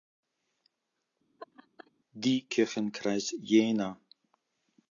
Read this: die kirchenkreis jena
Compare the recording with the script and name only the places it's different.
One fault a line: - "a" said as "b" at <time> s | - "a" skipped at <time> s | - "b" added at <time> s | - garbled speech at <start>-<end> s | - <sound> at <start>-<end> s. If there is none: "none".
- laugh at 1.4-1.9 s